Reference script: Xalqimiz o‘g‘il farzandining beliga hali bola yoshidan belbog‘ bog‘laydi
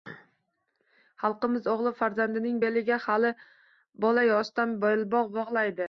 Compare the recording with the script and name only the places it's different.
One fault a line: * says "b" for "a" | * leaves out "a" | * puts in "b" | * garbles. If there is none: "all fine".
all fine